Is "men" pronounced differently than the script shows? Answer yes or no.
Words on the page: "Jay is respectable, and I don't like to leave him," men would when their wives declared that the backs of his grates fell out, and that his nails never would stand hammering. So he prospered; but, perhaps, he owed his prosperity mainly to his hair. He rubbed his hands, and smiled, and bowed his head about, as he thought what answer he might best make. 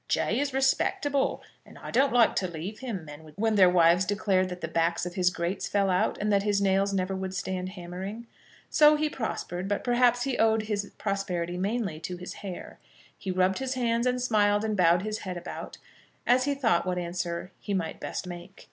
no